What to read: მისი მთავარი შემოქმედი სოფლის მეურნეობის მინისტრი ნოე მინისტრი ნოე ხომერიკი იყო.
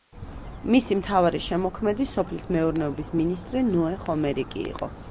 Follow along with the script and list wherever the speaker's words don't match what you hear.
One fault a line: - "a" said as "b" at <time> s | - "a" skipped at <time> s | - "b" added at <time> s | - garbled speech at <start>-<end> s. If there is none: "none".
- "მინისტრი ნოე" skipped at 4.0 s